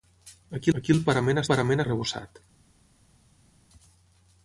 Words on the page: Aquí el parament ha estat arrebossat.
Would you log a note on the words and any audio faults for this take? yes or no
yes